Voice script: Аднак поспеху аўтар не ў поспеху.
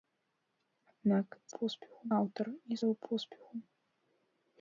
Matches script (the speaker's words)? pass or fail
pass